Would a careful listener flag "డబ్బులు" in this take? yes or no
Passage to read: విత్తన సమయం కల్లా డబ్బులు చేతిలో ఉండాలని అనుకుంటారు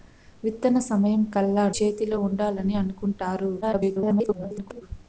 yes